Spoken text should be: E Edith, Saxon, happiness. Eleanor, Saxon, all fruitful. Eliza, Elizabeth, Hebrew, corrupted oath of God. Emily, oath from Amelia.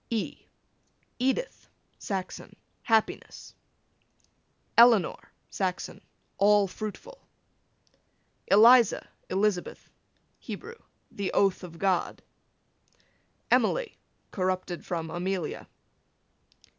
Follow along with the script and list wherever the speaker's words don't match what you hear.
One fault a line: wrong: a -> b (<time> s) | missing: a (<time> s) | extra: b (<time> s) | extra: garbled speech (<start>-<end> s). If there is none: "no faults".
wrong: corrupted -> the (11.1 s)
wrong: oath -> corrupted (14.3 s)